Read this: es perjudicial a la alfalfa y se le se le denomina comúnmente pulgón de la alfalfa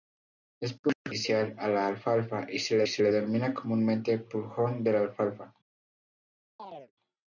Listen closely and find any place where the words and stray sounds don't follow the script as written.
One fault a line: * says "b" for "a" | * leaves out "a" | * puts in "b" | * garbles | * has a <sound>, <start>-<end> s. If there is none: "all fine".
* has a chirp, 6.6-6.9 s